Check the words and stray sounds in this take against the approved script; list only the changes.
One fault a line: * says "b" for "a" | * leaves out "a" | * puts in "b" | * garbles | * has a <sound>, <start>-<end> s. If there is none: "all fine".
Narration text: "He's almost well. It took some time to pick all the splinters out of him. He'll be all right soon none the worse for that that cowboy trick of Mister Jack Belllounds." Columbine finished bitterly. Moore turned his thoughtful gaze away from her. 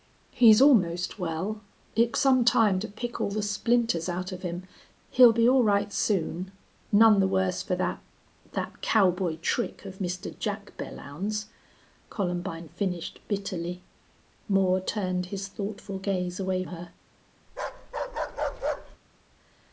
* leaves out "took"
* leaves out "from"
* has a bark, 17.5-19.0 s